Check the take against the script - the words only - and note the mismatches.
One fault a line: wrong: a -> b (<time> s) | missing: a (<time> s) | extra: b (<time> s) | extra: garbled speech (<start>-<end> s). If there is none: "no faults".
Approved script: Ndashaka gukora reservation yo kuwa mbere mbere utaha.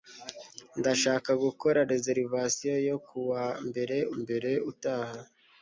no faults